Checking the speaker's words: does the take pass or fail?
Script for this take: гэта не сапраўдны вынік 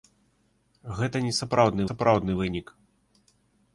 fail